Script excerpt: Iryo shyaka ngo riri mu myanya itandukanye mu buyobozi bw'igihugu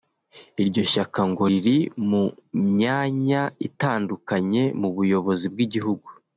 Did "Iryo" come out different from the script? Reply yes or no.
no